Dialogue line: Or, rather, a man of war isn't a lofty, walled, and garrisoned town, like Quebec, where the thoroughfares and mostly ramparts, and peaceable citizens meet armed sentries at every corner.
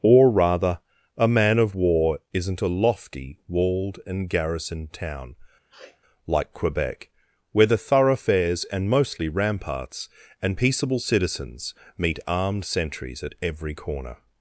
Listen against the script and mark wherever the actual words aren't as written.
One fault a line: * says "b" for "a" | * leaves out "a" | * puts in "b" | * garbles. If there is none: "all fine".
all fine